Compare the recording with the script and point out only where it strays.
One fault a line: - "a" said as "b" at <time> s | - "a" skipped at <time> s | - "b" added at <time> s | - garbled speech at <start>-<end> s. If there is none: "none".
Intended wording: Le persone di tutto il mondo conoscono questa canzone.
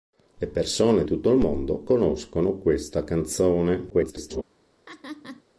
- "di" skipped at 1.0 s
- garbled speech at 3.9-4.4 s